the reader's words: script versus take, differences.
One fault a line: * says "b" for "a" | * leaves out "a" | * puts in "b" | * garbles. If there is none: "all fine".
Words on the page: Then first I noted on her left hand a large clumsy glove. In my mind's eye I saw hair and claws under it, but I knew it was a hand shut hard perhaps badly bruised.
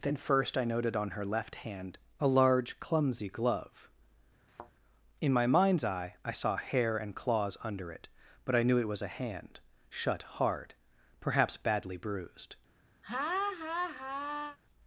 all fine